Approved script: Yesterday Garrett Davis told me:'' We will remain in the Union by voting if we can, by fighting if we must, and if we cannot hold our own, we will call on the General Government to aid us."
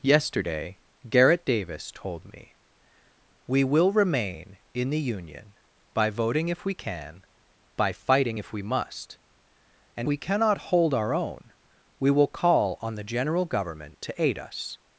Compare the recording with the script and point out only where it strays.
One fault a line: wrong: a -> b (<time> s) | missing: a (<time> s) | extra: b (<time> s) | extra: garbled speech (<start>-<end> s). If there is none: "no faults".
missing: if (10.1 s)